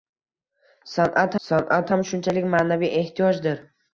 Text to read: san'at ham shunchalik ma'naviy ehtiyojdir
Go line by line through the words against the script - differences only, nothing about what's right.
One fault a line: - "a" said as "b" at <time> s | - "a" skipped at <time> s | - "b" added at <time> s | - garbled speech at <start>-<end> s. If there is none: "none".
- "san'at" added at 1.5 s